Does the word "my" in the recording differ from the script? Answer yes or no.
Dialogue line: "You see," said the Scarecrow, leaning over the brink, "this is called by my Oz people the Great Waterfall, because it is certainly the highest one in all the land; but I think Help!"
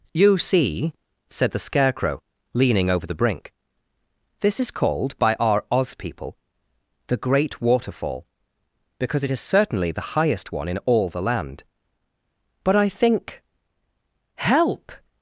yes